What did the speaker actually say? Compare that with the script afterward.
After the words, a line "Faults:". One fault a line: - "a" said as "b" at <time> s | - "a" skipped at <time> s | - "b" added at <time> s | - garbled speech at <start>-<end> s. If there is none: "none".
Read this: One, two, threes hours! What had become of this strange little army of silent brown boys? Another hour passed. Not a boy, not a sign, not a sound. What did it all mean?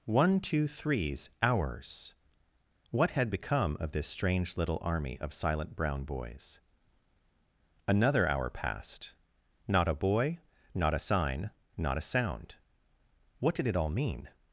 One, two, threes hours! What had become of this strange little army of silent brown boys? Another hour passed. Not a boy, not a sign, not a sound. What did it all mean?
Faults:
none